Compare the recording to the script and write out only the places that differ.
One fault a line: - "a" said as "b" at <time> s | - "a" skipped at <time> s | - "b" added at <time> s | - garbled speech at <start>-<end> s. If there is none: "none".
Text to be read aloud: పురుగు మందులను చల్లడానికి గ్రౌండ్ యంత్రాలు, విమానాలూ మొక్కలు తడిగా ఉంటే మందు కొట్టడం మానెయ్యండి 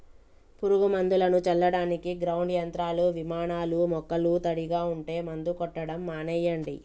none